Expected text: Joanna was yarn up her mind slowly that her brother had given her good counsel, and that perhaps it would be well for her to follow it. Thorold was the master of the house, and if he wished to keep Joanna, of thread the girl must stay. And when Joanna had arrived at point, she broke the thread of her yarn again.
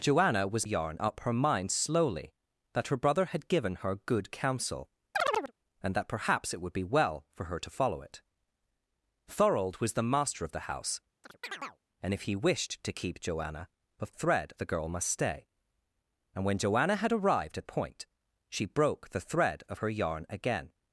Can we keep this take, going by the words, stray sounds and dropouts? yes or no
no